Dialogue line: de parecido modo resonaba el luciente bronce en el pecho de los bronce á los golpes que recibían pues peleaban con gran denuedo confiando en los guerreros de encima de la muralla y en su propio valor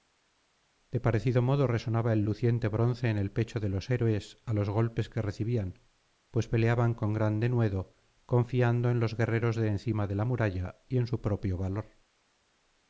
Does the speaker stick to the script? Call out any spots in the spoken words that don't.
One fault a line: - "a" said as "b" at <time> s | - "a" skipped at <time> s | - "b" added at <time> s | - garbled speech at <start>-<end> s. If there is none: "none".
- "bronce" said as "héroes" at 3.9 s